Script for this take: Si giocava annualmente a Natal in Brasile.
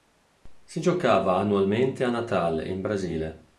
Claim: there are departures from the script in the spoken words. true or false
false